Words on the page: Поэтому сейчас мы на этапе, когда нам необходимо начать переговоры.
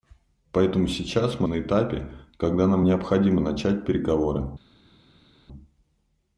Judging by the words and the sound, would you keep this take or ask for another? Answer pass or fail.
pass